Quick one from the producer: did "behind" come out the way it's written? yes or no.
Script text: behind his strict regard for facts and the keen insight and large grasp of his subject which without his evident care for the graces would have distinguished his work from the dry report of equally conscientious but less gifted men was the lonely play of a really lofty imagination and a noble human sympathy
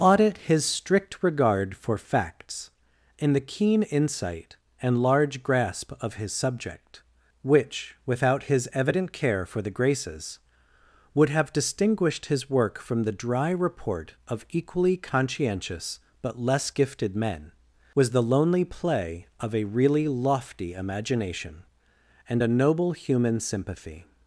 no